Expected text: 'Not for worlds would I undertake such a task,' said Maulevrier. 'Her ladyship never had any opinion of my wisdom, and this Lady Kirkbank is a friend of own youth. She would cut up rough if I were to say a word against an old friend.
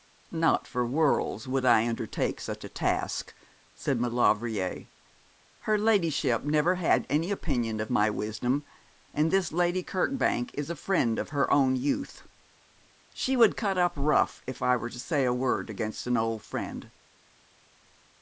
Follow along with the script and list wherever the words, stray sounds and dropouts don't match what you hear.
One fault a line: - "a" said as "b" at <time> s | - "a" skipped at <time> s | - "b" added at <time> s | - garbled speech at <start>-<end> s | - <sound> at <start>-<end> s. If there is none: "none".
- "her" added at 11.3 s